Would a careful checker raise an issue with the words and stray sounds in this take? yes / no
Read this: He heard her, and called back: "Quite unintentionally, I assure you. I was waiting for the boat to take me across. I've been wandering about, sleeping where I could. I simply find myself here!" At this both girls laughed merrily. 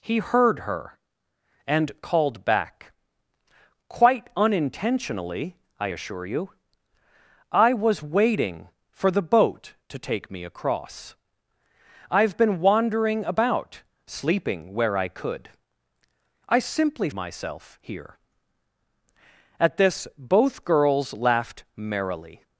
yes